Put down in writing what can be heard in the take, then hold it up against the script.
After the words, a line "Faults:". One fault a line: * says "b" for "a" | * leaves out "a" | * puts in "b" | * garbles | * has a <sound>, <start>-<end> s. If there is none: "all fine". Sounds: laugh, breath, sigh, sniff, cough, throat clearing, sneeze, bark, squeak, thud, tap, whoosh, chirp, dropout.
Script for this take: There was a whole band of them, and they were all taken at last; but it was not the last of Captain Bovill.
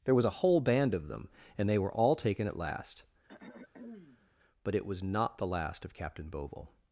There was a whole band of them, and they were all taken at last; but it was not the last of Captain Bovill.
Faults:
* has a throat clearing, 3.3-4.3 s